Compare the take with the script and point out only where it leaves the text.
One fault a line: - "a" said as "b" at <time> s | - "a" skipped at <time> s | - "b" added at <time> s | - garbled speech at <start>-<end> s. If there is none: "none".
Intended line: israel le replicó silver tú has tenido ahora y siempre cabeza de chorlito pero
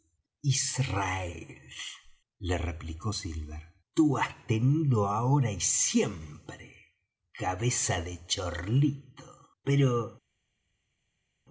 none